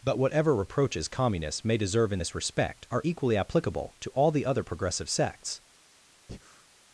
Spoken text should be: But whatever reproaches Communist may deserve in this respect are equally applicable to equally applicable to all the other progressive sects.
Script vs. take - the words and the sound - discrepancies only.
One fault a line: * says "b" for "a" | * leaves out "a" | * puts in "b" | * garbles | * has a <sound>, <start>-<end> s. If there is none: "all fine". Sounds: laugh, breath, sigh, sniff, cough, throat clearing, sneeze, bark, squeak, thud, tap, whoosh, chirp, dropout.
* says "Communists" for "Communist"
* leaves out "equally applicable to"
* has a breath, 6.3-6.7 s